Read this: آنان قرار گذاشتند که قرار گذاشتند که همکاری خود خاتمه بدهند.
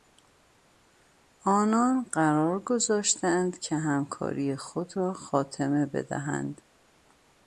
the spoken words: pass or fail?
fail